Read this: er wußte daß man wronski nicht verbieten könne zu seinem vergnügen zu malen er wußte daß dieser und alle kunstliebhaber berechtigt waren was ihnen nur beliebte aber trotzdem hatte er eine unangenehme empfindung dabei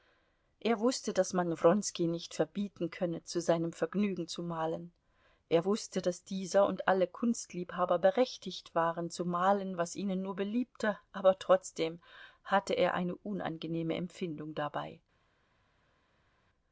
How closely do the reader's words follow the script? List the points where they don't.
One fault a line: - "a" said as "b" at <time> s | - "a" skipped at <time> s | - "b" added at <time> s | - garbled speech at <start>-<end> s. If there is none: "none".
- "zu malen" added at 9.1 s